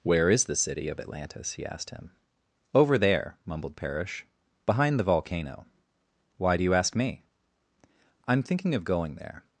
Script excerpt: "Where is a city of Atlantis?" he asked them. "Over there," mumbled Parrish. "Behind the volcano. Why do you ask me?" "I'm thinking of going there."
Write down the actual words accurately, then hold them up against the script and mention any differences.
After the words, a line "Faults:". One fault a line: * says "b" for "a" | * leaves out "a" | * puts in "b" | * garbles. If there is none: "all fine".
"Where is the city of Atlantis?" he asked him. "Over there," mumbled Parrish. "Behind the volcano. Why do you ask me?" "I'm thinking of going there."
Faults:
* says "the" for "a"
* says "him" for "them"